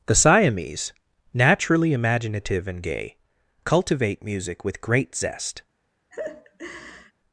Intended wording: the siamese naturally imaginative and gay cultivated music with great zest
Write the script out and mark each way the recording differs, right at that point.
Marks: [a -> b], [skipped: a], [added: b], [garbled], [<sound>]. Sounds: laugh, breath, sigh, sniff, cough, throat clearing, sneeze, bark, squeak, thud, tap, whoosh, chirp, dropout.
the siamese naturally imaginative and gay [cultivated -> cultivate] music with great zest [laugh]